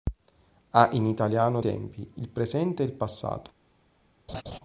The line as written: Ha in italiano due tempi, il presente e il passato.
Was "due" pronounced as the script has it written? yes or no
no